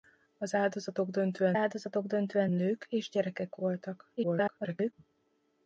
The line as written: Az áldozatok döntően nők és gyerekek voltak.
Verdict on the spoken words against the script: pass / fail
fail